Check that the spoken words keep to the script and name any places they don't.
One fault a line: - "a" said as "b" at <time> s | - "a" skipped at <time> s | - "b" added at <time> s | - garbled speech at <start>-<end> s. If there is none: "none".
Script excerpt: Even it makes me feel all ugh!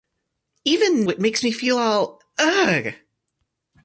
none